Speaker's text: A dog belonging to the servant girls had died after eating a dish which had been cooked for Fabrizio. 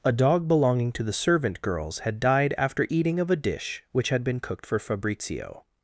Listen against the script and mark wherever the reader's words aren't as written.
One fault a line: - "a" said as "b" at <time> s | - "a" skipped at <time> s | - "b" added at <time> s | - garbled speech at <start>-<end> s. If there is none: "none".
- "of" added at 3.2 s